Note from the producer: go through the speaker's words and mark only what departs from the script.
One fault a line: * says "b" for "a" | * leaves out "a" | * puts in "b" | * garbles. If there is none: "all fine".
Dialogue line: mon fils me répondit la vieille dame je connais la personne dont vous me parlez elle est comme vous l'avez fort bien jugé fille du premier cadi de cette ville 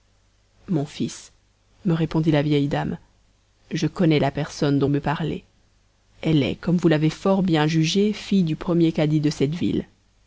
* leaves out "vous"